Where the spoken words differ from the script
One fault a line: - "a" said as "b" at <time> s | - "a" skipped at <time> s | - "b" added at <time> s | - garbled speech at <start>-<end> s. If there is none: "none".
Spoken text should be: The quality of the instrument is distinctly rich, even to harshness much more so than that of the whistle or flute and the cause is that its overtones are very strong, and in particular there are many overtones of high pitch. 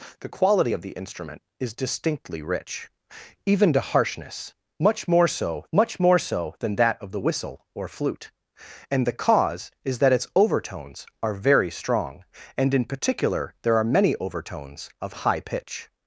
- "much more so" added at 5.7 s